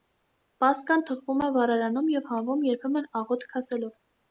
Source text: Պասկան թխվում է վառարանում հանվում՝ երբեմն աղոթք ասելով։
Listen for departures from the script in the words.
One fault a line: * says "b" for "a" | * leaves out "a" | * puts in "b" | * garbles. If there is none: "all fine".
* puts in "և"